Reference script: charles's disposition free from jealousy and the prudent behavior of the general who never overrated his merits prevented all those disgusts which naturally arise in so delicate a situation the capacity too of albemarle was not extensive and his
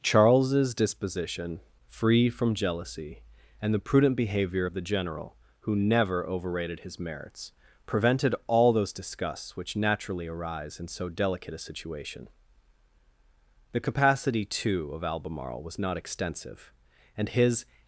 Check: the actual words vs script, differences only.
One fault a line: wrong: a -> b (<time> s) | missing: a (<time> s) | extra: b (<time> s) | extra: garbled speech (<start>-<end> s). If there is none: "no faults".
no faults